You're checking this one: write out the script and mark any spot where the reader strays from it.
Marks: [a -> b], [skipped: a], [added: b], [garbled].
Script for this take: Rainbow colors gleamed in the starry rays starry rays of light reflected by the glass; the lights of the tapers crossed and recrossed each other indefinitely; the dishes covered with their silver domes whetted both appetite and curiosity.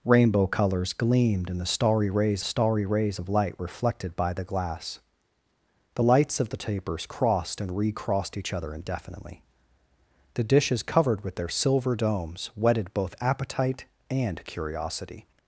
Rainbow colors gleamed in the starry rays starry rays of light reflected by the glass; the lights of the tapers crossed and recrossed each other indefinitely; the dishes covered with their silver domes whetted both appetite and curiosity.